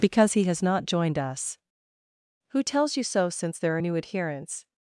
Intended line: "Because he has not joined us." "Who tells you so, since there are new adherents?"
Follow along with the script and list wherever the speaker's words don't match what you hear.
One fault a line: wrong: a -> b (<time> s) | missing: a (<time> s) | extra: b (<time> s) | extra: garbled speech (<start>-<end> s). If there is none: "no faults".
no faults